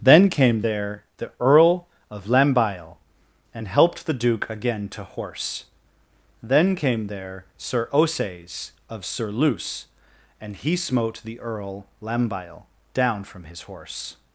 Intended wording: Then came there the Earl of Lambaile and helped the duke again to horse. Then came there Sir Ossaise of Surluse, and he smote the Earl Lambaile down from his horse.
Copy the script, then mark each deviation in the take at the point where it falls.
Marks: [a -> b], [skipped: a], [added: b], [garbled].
Then came there the Earl of Lambaile and helped the duke again to horse. Then came there Sir Ossaise of Surluse, and he smote the Earl Lambaile down from his horse.